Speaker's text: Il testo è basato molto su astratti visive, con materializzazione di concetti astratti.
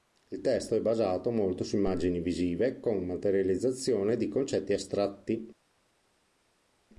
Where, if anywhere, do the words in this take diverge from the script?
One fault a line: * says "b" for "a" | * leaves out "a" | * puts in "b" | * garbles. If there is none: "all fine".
* says "immagini" for "astratti"